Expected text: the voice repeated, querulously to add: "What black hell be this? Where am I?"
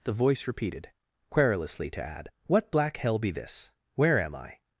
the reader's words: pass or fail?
pass